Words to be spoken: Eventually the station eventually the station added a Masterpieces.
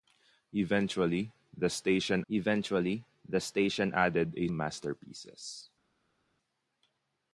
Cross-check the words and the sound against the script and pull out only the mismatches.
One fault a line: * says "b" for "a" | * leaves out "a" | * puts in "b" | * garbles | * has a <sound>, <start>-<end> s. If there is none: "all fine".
all fine